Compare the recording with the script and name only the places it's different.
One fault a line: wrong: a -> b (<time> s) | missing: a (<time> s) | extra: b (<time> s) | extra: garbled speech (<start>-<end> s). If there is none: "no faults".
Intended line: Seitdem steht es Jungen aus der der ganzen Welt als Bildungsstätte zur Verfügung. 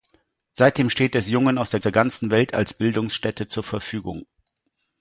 no faults